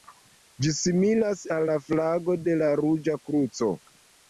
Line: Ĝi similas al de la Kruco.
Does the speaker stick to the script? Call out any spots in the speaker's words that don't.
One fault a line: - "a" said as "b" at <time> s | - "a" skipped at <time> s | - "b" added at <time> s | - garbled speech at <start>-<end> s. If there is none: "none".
- "la flago" added at 1.7 s
- "Ruĝa" added at 2.9 s